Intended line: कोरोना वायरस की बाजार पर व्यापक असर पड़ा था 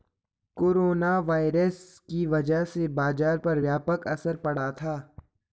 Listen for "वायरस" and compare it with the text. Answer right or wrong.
right